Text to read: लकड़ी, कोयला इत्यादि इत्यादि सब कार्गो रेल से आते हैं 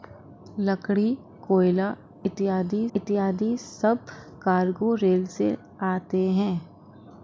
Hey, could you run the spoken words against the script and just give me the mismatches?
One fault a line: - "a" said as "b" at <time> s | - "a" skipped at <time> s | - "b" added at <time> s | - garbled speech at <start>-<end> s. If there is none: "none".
none